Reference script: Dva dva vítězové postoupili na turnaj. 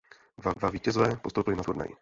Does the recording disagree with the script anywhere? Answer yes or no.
no